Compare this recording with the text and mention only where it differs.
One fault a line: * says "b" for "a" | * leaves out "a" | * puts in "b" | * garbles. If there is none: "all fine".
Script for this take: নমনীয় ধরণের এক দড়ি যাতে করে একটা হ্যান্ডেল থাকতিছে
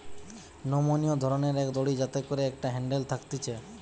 all fine